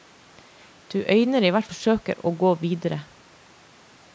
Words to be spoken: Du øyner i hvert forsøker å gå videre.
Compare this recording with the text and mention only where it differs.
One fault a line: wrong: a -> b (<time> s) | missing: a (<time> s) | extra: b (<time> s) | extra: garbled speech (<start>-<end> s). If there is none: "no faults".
no faults